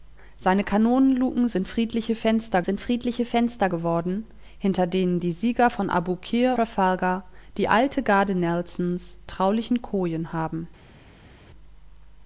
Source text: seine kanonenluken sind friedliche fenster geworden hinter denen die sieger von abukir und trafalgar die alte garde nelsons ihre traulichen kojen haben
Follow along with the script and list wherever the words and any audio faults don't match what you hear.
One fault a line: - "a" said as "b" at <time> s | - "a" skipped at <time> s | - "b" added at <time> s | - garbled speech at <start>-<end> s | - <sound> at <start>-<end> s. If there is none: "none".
- "sind friedliche fenster" added at 2.6 s
- "und" skipped at 6.6 s
- "ihre" skipped at 9.2 s